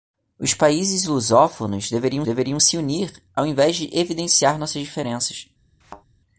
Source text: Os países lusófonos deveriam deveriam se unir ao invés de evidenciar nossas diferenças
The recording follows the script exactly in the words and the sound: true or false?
false